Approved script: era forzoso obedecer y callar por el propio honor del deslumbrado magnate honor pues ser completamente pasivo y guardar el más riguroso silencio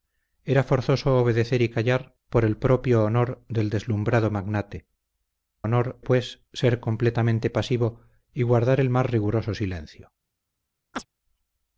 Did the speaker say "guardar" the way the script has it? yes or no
yes